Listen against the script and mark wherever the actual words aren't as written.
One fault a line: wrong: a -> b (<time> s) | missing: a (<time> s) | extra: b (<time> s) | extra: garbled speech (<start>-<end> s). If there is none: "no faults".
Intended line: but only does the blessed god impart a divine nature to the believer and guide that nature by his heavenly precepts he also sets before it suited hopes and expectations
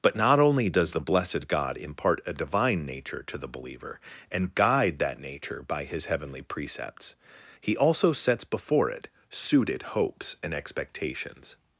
extra: not (0.1 s)